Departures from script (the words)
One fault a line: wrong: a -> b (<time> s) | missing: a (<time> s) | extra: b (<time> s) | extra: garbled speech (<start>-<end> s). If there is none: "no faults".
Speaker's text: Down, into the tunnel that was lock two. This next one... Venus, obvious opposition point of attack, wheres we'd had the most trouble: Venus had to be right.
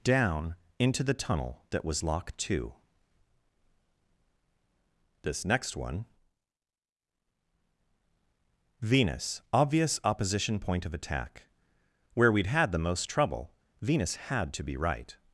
wrong: wheres -> where (12.1 s)